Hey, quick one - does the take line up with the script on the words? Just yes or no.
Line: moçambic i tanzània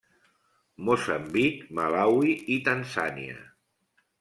no